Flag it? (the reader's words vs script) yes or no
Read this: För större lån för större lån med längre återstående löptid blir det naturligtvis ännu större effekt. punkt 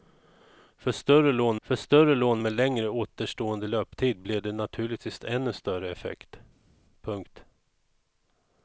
no